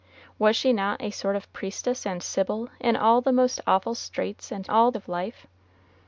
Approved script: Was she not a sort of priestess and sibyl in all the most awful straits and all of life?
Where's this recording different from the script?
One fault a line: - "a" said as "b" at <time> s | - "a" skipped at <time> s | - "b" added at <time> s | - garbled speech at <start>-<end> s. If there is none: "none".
none